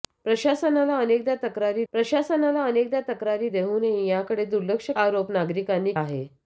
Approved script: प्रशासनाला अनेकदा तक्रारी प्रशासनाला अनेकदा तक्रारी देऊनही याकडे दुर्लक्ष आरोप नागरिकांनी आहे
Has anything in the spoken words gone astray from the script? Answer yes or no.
no